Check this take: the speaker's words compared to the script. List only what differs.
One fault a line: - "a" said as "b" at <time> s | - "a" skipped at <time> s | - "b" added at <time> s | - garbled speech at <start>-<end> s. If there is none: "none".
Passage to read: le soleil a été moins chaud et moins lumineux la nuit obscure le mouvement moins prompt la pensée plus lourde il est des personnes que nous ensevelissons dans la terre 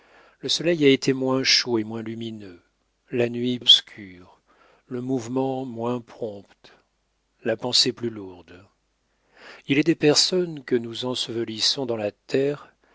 none